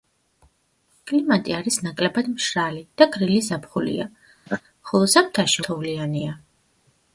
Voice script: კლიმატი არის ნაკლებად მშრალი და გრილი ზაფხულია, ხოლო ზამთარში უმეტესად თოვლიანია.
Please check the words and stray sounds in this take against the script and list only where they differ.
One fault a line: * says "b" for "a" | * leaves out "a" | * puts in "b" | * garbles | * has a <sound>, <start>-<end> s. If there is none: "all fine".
* has a laugh, 4.5-4.6 s
* leaves out "უმეტესად"